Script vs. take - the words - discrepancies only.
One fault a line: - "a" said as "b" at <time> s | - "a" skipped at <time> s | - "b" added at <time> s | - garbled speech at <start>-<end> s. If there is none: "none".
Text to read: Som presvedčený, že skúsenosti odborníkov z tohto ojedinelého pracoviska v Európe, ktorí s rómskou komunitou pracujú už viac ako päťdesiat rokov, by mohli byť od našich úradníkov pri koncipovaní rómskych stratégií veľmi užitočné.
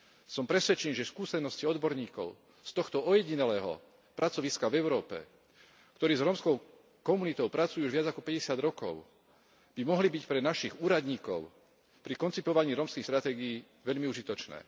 - "od" said as "pre" at 10.2 s